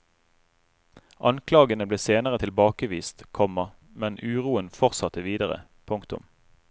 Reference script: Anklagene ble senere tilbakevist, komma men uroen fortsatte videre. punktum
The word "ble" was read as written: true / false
true